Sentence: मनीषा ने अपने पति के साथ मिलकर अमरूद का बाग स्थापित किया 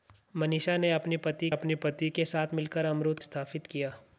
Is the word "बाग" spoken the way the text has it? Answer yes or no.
no